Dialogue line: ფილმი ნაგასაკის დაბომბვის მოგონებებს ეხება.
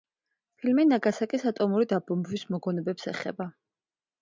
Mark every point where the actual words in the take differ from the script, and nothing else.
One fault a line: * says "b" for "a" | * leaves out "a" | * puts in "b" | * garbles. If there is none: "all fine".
* puts in "ატომური"